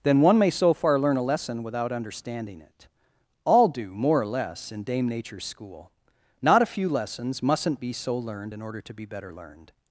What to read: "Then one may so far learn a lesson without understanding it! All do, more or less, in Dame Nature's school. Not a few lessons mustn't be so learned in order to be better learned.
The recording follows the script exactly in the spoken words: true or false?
true